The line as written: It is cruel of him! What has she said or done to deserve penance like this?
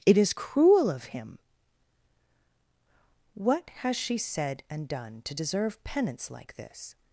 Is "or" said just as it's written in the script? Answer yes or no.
no